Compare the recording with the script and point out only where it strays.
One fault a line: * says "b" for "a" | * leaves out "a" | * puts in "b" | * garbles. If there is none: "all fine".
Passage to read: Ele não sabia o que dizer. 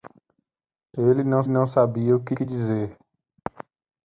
* puts in "não"
* puts in "que"